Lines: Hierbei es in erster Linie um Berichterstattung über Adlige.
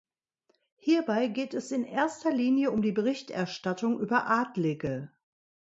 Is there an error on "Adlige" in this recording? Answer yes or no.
no